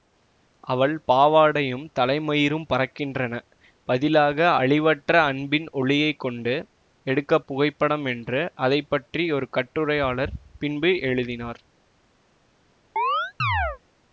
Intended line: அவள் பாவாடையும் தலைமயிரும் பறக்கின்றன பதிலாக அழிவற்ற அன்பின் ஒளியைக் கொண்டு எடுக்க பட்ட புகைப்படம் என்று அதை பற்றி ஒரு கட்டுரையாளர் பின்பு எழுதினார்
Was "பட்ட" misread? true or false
true